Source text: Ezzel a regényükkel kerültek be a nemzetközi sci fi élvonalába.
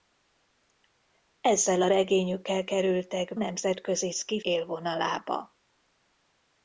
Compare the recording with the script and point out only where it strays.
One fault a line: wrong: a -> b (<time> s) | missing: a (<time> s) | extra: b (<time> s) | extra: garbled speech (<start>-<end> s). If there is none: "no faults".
missing: be a (3.3 s)
missing: fi (4.4 s)